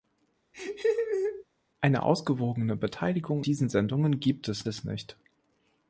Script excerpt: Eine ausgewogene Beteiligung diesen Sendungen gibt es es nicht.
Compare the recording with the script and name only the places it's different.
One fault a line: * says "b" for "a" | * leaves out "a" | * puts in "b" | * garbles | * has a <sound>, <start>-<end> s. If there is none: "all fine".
* has a laugh, 0.5-1.4 s